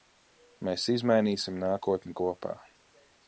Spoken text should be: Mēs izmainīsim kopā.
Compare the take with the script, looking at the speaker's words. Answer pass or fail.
fail